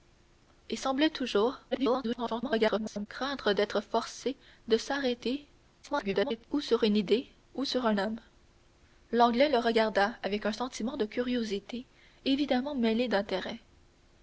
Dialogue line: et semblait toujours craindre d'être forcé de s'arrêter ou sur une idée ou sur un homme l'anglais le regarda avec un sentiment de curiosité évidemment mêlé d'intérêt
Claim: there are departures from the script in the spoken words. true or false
true